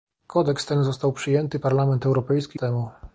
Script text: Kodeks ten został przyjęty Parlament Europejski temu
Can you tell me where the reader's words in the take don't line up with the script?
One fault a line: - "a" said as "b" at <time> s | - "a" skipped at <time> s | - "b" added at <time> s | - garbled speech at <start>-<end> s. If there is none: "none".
none